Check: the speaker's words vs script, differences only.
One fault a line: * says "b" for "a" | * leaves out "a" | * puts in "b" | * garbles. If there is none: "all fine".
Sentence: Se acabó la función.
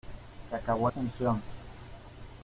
* leaves out "la"